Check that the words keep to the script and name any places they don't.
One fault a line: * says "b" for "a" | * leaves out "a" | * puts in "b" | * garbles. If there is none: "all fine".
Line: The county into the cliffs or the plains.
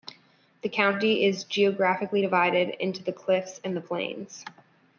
* puts in "is geographically divided"
* says "and" for "or"